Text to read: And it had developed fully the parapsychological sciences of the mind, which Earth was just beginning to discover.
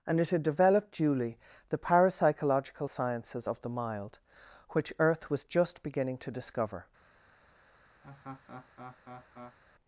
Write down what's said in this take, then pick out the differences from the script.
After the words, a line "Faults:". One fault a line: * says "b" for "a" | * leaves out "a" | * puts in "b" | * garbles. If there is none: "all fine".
And it had developed duly the parapsychological sciences of the mild, which Earth was just beginning to discover.
Faults:
* says "duly" for "fully"
* says "mild" for "mind"